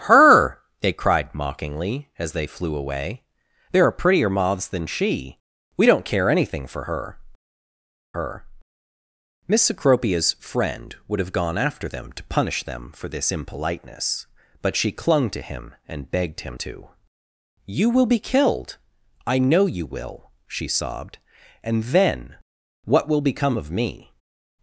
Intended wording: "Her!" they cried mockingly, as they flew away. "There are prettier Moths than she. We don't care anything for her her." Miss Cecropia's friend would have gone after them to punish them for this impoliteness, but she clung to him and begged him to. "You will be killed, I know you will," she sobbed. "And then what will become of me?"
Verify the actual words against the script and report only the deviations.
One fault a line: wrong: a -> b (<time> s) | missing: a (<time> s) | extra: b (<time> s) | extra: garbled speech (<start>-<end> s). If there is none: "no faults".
no faults